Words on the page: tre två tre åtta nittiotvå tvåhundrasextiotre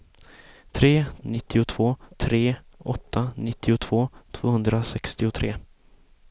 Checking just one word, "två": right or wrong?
wrong